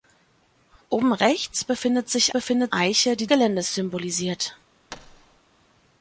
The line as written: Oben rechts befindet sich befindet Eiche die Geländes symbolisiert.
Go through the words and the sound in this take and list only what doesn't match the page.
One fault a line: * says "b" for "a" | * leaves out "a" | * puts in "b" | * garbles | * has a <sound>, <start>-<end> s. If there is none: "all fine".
* has a thud, 4.9-5.4 s